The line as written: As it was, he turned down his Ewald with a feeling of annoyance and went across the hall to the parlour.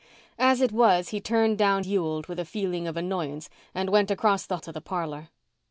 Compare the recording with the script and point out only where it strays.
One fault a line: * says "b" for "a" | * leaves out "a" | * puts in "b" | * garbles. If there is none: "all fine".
* leaves out "his"
* leaves out "hall"